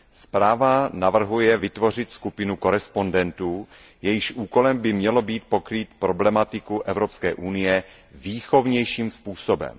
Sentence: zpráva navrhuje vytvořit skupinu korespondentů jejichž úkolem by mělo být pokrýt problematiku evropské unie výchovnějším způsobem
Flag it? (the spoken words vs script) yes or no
no